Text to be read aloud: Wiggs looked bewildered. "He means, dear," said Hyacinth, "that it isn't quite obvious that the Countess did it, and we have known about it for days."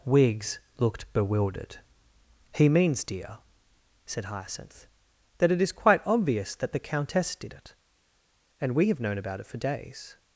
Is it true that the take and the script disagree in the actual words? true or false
true